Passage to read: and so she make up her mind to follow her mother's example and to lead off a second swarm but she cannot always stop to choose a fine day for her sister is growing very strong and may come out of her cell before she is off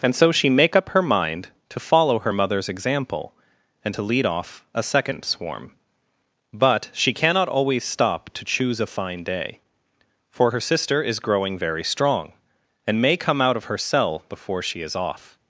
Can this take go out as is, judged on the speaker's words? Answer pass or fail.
pass